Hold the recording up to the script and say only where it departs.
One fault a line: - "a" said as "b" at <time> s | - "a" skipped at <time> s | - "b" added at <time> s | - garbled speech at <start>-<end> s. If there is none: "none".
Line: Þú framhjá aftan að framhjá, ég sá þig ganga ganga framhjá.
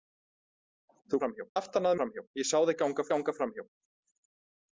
none